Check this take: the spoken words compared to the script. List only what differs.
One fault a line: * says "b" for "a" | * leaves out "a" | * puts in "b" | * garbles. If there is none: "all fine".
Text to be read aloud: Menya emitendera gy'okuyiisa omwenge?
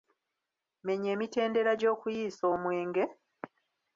all fine